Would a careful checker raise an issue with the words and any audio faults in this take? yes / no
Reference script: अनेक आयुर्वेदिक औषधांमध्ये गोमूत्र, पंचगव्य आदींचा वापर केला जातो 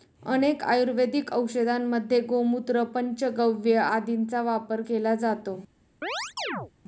yes